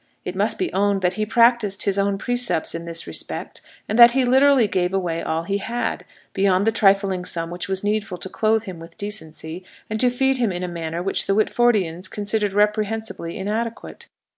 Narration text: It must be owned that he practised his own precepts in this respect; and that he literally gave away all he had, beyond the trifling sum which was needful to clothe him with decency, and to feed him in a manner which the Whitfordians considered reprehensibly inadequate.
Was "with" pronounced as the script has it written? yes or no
yes